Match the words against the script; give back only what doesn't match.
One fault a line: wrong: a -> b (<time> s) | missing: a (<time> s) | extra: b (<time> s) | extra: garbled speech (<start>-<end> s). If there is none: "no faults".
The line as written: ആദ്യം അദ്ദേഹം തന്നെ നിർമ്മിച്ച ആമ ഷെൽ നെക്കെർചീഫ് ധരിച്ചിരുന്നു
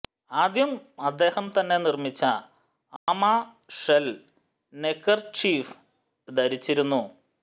no faults